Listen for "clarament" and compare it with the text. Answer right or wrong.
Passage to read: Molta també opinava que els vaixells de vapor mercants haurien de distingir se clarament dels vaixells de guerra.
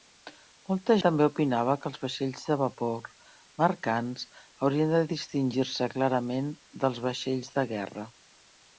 right